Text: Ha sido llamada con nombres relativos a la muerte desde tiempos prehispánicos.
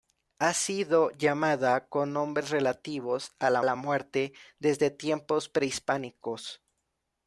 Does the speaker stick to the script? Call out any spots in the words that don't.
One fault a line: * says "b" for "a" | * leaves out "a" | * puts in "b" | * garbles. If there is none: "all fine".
* puts in "la"